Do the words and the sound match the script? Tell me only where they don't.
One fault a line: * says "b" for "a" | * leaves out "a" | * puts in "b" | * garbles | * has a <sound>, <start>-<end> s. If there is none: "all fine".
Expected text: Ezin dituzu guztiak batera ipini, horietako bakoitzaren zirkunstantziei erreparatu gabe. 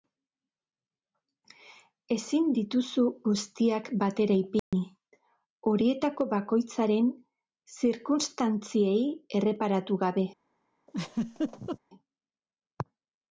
* has a dropout, 4.6-4.7 s
* has a laugh, 10.9-11.8 s